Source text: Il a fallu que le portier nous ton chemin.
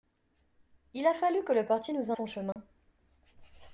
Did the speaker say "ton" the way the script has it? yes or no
yes